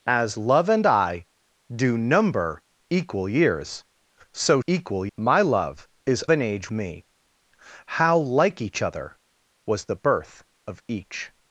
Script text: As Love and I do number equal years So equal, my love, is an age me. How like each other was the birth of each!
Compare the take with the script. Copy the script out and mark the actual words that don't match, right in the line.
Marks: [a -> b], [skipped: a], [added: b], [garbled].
As Love and I do number equal years So equal, my love, is an age me. How like each other was the birth of each!